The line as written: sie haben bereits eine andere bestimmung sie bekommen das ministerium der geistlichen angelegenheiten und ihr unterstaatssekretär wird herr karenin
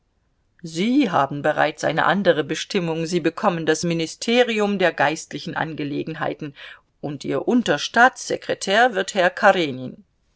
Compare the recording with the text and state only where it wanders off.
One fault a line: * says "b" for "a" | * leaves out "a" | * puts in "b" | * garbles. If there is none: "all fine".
all fine